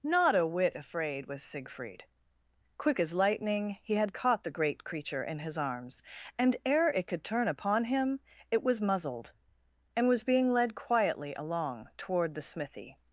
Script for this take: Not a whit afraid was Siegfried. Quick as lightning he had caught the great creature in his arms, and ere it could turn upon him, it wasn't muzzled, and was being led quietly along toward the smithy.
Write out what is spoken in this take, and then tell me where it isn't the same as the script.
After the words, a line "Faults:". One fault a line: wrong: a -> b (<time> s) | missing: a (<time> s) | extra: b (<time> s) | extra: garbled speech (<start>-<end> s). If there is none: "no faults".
Not a whit afraid was Siegfried. Quick as lightning he had caught the great creature in his arms, and ere it could turn upon him, it was muzzled, and was being led quietly along toward the smithy.
Faults:
wrong: wasn't -> was (8.6 s)